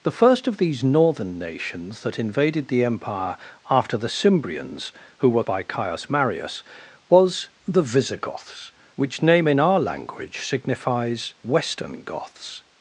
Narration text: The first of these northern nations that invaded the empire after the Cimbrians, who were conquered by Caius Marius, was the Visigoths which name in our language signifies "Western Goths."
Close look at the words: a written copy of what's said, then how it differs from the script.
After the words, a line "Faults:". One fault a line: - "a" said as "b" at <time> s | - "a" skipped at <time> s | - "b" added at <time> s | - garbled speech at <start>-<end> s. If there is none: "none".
The first of these northern nations that invaded the empire after the Cimbrians, who were by Caius Marius, was the Visigoths which name in our language signifies "Western Goths."
Faults:
- "conquered" skipped at 5.4 s